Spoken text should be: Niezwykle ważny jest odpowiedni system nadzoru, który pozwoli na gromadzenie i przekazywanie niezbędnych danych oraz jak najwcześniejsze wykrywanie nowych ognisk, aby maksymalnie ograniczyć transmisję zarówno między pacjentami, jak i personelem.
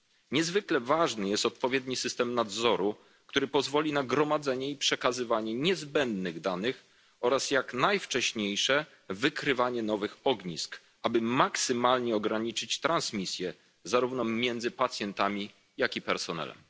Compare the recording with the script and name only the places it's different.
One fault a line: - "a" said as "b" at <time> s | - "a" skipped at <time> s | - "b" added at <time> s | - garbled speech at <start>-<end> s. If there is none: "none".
none